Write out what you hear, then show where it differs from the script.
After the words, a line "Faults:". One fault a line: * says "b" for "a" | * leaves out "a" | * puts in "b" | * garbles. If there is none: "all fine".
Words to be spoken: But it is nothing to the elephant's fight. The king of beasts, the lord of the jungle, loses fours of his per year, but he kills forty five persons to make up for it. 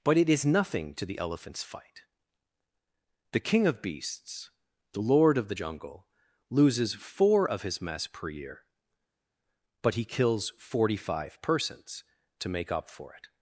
But it is nothing to the elephant's fight. The king of beasts, the lord of the jungle, loses four of his mess per year, but he kills forty five persons to make up for it.
Faults:
* says "four" for "fours"
* puts in "mess"